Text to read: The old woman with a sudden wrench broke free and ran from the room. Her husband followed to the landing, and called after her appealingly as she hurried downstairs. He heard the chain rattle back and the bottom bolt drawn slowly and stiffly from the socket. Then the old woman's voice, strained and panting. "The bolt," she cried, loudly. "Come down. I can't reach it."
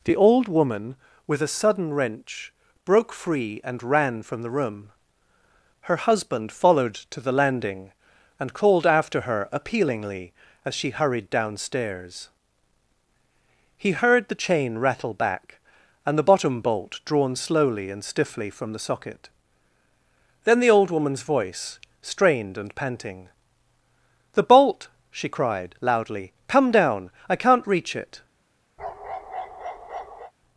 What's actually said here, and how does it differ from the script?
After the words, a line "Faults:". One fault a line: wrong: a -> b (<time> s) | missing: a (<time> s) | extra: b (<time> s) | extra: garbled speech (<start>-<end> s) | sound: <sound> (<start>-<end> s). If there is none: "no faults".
The old woman with a sudden wrench broke free and ran from the room. Her husband followed to the landing, and called after her appealingly as she hurried downstairs. He heard the chain rattle back and the bottom bolt drawn slowly and stiffly from the socket. Then the old woman's voice, strained and panting. "The bolt," she cried, loudly. "Come down. I can't reach it."
Faults:
sound: bark (28.8-30.3 s)